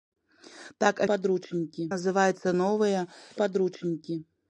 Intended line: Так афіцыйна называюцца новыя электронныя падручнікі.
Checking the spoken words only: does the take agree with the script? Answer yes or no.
no